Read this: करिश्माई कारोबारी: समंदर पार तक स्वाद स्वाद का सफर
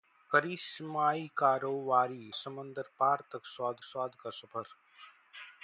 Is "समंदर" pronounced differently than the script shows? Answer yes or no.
no